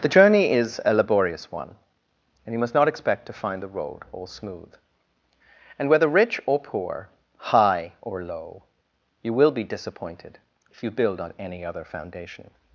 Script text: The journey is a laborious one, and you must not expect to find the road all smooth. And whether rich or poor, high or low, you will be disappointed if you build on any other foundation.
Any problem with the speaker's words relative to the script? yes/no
no